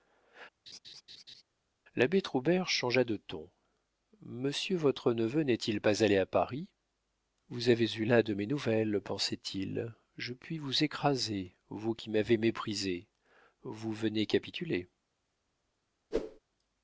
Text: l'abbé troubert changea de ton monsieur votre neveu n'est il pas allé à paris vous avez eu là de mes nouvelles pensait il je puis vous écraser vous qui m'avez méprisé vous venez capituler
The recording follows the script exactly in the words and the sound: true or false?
false